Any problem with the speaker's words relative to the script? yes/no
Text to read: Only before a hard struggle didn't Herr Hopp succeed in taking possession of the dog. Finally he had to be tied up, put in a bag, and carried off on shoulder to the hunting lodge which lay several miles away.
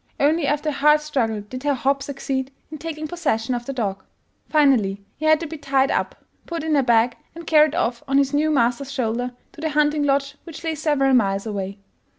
yes